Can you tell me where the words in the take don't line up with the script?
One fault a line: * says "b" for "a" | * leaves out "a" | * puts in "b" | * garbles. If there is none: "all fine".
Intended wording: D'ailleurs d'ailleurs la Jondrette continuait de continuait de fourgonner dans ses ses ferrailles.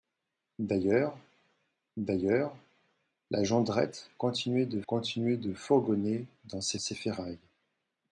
all fine